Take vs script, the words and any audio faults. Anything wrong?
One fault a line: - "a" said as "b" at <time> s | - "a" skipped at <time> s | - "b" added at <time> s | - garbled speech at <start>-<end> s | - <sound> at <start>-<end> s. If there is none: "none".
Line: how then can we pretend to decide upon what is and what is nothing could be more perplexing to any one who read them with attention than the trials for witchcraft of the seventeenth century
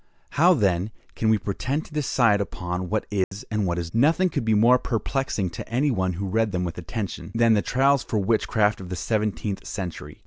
- dropout at 3.2-3.3 s